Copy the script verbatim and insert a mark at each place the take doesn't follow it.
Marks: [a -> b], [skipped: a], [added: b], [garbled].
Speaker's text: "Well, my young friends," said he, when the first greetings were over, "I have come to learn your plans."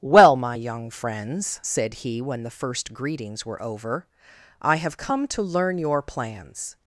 "Well, my young friends," said he, when the first greetings were over, "I have come to learn your plans."